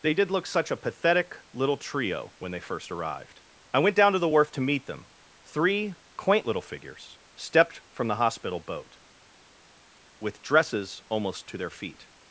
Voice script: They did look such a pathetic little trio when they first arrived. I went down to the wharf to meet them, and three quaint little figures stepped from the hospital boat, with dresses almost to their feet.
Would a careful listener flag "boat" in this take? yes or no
no